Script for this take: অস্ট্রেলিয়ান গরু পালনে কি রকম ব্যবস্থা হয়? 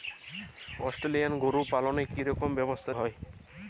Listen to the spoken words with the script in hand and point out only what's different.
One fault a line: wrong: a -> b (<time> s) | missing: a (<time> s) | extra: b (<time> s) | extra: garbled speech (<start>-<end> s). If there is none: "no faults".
no faults